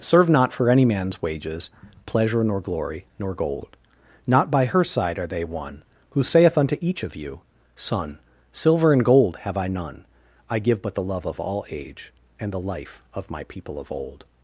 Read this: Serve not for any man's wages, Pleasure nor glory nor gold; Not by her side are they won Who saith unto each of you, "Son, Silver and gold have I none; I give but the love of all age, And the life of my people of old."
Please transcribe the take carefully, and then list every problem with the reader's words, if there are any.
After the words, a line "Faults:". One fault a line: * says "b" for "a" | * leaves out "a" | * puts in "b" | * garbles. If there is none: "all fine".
Serve not for any man's wages, Pleasure nor glory nor gold; Not by her side are they won Who saith unto each of you, "Son, Silver and gold have I none; I give but the love of all age, And the life of my people of old."
Faults:
all fine